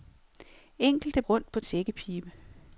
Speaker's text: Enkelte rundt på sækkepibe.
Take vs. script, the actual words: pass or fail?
pass